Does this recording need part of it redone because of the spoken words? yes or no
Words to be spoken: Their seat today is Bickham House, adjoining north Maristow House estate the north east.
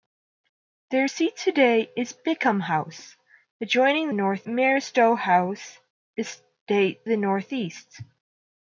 no